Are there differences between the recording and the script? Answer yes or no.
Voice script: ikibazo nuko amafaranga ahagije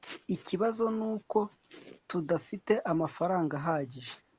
yes